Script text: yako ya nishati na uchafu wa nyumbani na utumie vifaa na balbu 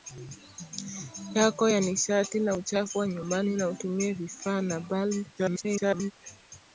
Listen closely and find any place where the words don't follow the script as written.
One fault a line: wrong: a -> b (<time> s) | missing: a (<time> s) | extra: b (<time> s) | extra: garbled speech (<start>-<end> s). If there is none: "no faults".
extra: garbled speech (5.4-6.1 s)